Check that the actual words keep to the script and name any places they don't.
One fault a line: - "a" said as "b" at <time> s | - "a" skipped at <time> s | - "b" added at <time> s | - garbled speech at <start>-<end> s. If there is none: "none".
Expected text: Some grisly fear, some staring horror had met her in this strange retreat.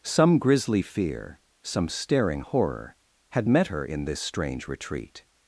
none